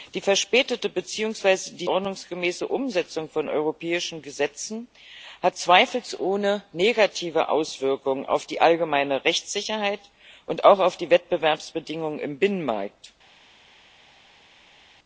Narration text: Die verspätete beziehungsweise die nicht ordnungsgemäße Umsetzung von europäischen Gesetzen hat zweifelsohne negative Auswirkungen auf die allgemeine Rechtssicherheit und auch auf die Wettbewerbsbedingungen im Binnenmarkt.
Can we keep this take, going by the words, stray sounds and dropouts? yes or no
no